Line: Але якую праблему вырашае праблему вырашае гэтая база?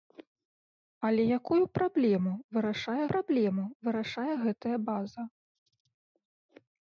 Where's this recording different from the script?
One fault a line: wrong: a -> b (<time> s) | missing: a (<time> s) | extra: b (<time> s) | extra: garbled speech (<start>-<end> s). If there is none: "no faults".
no faults